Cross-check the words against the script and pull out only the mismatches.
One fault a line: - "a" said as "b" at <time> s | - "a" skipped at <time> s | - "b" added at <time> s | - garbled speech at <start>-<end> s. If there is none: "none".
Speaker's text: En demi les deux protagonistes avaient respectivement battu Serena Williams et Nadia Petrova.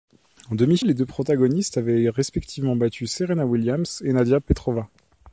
none